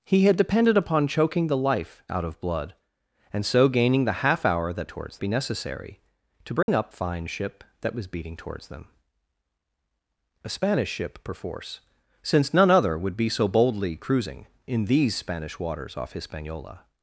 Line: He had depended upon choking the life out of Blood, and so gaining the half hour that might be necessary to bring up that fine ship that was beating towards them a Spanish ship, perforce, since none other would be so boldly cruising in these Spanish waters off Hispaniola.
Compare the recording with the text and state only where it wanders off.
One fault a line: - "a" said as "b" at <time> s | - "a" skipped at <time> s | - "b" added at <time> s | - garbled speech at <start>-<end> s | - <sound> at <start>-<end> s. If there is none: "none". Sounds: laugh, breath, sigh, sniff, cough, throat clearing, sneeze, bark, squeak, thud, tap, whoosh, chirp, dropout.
- "might" said as "towards" at 4.9 s
- dropout at 6.6-6.7 s
- "that" skipped at 6.9 s